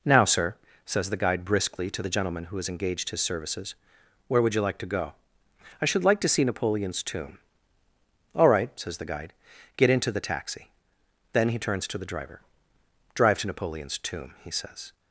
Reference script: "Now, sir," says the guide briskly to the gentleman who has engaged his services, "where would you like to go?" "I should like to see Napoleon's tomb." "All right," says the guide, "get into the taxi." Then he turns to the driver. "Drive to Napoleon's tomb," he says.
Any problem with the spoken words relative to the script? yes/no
no